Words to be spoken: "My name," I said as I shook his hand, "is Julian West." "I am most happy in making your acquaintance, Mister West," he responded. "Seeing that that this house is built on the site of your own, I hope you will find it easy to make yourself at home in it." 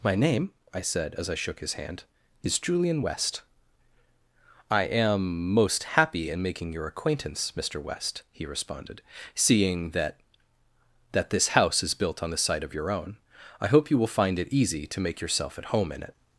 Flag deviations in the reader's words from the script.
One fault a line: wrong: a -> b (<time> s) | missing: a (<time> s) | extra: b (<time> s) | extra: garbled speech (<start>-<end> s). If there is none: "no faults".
no faults